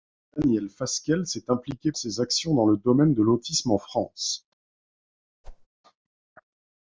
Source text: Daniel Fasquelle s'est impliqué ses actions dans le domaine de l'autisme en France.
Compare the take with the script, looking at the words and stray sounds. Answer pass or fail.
fail